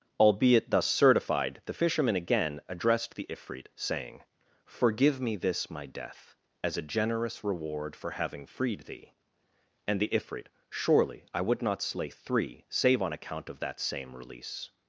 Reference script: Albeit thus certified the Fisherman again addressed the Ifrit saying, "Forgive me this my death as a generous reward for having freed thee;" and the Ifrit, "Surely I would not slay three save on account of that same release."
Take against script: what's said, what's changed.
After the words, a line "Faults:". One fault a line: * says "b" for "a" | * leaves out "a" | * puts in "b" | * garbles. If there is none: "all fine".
Albeit thus certified the Fisherman again addressed the Ifrit saying, "Forgive me this my death as a generous reward for having freed thee;" and the Ifrit, "Surely I would not slay three save on account of that same release."
Faults:
all fine